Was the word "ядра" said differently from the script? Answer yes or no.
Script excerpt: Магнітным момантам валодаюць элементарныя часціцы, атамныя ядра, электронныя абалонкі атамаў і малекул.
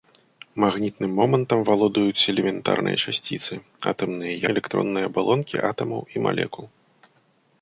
yes